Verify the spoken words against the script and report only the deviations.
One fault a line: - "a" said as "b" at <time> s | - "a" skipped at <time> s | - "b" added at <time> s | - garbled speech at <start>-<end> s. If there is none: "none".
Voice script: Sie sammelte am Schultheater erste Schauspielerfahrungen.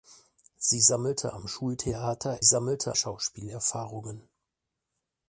- "erste" said as "sammelte" at 2.4 s